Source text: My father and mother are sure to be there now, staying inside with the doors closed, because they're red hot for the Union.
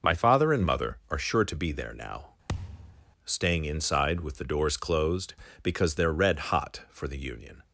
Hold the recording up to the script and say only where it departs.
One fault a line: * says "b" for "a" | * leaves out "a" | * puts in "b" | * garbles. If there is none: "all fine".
all fine